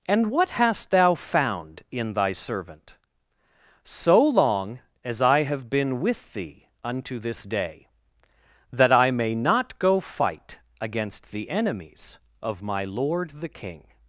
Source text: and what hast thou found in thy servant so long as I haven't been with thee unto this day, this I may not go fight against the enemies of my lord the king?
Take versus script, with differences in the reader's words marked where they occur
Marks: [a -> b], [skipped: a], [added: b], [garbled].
and what hast thou found in thy servant so long as I [haven't -> have] been with thee unto this day, [this -> that] I may not go fight against the enemies of my lord the king?